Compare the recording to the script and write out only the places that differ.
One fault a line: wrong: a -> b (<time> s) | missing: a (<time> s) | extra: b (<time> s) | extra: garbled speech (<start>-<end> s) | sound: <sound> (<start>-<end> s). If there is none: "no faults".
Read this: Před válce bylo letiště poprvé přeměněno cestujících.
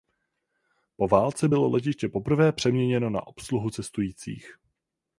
wrong: Před -> Po (0.9 s)
extra: na obsluhu (3.1 s)